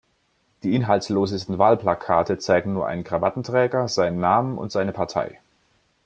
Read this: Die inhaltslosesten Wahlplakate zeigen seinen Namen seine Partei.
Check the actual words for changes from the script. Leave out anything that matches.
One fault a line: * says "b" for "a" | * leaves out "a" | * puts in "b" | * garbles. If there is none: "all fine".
* puts in "nur einen Krawattenträger"
* puts in "und"